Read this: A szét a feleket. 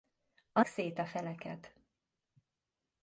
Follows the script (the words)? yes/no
yes